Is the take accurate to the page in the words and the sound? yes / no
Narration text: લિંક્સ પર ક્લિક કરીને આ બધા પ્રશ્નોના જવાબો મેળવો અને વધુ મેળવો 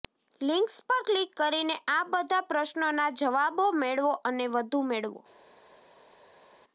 yes